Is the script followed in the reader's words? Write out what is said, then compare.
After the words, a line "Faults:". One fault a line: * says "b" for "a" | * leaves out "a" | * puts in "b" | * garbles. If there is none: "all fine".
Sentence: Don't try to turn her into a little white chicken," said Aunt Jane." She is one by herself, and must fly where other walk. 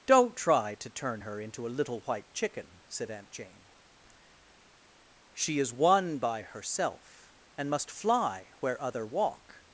Don't try to turn her into a little white chicken," said Aunt Jane." She is one by herself, and must fly where other walk.
Faults:
all fine